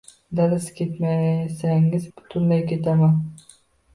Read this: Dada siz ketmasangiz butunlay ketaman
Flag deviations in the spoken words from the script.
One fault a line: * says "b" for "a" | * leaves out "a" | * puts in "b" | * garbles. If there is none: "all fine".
all fine